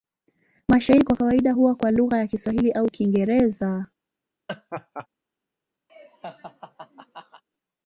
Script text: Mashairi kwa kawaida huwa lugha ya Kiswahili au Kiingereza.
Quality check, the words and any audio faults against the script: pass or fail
fail